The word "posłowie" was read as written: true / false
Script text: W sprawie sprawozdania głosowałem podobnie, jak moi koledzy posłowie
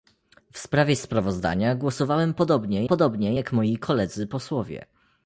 true